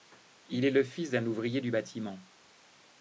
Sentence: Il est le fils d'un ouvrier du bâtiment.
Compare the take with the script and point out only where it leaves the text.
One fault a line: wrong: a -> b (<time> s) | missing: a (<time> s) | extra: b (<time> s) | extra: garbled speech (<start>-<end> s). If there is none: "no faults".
no faults